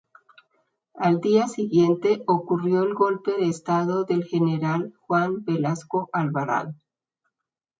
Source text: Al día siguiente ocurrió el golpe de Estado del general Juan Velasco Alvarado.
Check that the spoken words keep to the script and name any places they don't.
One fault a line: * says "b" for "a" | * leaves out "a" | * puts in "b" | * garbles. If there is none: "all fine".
all fine